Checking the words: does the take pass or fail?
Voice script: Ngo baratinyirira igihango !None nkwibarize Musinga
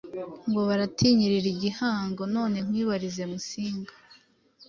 pass